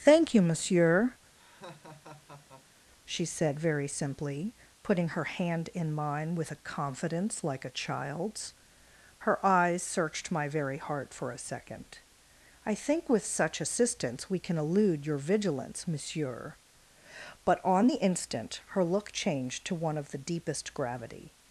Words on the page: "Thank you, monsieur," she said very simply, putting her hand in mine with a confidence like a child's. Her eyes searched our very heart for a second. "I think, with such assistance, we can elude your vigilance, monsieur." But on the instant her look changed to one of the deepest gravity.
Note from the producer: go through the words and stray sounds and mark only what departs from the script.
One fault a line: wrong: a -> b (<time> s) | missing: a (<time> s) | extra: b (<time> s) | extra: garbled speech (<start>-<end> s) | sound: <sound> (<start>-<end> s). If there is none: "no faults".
sound: laugh (1.3-2.9 s)
wrong: our -> my (10.3 s)